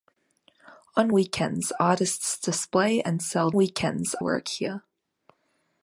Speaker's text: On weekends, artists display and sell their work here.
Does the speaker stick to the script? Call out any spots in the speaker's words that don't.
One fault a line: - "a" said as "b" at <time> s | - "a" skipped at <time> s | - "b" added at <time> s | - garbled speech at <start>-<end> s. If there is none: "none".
- "their" said as "weekends" at 3.5 s